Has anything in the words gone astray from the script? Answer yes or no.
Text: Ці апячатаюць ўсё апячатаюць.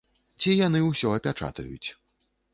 yes